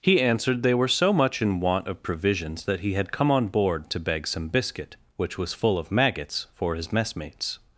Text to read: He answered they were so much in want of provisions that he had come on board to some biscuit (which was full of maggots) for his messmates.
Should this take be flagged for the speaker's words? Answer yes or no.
yes